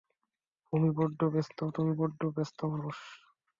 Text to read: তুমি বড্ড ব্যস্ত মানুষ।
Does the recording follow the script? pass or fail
pass